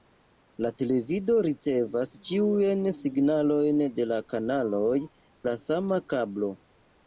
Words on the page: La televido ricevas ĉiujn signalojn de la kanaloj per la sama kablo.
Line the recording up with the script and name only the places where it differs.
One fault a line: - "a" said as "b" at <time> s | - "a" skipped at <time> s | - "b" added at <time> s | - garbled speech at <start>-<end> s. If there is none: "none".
- "per" skipped at 5.0 s